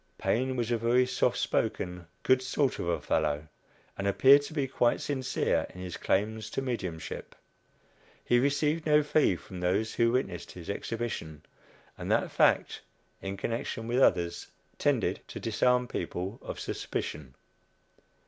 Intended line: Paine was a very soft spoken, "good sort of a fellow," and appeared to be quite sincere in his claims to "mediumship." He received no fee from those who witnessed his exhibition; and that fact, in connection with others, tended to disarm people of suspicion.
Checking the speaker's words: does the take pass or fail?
pass